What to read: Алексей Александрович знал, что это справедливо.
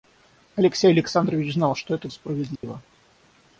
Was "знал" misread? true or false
false